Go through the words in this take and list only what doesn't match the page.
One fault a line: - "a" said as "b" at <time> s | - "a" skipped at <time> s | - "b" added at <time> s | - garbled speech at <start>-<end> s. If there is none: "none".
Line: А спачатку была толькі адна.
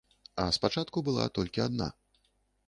none